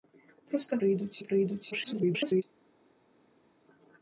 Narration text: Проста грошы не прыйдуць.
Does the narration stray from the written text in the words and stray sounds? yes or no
yes